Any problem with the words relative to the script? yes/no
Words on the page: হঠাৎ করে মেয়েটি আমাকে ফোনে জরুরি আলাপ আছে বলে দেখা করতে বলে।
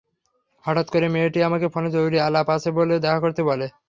no